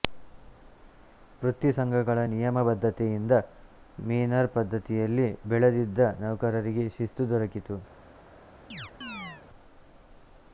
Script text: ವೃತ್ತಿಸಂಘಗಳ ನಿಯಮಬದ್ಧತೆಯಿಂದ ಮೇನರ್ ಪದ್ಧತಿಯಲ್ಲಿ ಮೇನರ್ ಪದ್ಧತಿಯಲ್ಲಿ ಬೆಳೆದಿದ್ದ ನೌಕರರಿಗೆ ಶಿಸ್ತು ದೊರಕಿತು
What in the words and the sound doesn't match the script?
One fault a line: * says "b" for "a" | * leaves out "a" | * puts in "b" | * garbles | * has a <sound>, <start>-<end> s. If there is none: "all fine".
* leaves out "ಮೇನರ್ ಪದ್ಧತಿಯಲ್ಲಿ"
* has a chirp, 8.7-9.4 s